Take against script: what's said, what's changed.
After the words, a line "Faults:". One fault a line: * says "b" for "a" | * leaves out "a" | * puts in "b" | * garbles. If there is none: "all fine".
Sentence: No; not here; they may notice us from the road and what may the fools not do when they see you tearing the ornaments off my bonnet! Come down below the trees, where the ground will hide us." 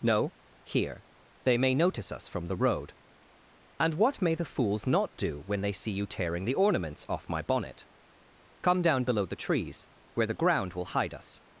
No; here; they may notice us from the road and what may the fools not do when they see you tearing the ornaments off my bonnet! Come down below the trees, where the ground will hide us."
Faults:
* leaves out "not"